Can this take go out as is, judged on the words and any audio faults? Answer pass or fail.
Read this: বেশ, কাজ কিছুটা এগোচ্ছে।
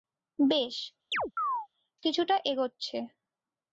fail